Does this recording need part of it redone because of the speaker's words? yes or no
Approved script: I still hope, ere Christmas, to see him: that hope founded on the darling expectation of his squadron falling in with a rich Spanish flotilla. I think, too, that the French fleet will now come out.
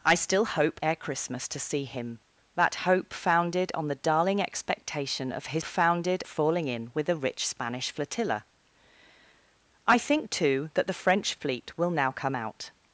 yes